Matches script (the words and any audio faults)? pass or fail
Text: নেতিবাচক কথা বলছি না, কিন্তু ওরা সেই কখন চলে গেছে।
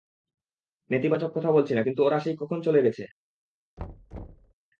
fail